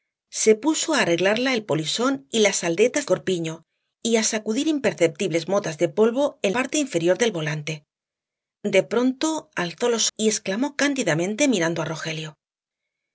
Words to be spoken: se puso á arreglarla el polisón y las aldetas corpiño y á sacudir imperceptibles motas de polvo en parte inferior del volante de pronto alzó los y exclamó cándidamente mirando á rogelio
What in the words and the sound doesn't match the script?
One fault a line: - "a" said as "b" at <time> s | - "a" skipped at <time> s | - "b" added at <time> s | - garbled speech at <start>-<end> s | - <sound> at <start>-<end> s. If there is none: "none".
none